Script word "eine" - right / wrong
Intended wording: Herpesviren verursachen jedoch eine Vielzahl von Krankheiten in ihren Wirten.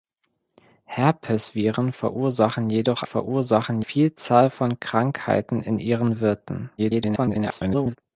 wrong